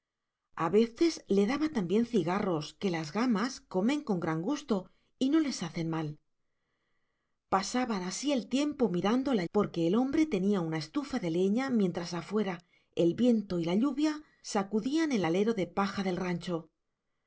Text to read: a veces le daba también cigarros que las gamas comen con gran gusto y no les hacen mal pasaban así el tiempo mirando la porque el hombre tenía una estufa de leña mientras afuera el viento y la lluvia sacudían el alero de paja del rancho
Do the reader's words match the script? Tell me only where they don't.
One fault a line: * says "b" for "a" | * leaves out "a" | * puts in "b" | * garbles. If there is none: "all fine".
all fine